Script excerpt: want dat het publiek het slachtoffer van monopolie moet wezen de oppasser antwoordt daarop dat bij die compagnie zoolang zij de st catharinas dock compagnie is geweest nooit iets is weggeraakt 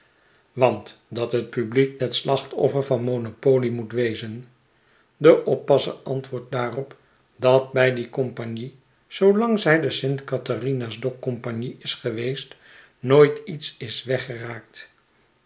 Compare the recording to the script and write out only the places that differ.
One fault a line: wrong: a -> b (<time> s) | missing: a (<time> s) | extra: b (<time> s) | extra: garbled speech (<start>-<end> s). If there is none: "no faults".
no faults